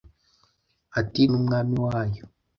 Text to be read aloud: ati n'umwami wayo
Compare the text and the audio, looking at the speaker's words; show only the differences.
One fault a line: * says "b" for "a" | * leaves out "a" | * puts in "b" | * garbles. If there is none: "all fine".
all fine